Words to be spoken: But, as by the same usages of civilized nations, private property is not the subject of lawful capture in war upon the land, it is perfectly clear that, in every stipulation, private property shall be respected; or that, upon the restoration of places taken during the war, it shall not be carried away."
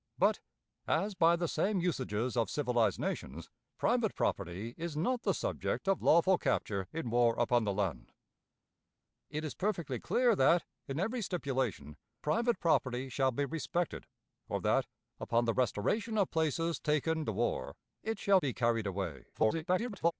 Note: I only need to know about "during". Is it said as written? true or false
false